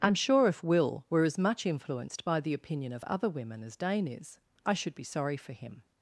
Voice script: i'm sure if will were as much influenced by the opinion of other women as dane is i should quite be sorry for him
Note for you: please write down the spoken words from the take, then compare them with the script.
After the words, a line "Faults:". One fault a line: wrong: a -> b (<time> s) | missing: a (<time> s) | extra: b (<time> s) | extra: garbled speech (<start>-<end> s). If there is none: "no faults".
i'm sure if will were as much influenced by the opinion of other women as dane is i should be sorry for him
Faults:
missing: quite (4.9 s)